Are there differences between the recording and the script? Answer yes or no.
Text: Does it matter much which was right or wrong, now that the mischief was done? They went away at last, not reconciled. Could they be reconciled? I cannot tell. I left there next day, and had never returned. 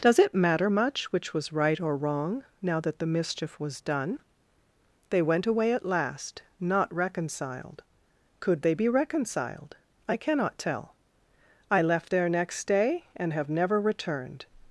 yes